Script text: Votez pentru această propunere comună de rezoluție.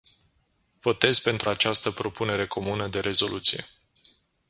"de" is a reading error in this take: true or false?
false